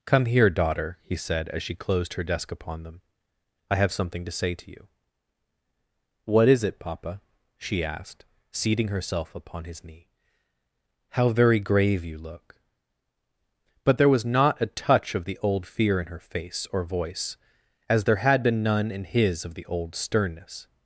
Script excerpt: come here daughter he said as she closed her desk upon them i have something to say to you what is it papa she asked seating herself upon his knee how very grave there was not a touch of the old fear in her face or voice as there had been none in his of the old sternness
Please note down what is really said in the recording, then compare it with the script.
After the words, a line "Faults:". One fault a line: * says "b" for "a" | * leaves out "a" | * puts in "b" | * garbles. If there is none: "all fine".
come here daughter he said as she closed her desk upon them i have something to say to you what is it papa she asked seating herself upon his knee how very grave you look but there was not a touch of the old fear in her face or voice as there had been none in his of the old sternness
Faults:
* puts in "you look but"